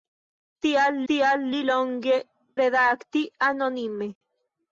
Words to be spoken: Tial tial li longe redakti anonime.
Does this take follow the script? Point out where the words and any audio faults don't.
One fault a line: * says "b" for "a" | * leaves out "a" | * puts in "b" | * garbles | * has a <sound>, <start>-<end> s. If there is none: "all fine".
all fine